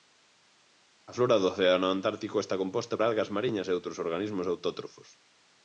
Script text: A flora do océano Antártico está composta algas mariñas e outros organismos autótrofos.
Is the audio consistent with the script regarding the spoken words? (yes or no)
yes